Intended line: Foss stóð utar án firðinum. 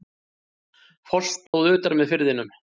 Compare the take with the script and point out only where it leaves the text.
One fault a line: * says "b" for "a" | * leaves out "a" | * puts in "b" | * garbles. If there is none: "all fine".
* says "með" for "án"